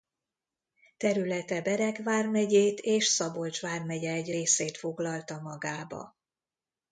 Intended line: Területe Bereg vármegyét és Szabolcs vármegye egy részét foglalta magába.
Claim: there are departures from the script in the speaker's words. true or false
false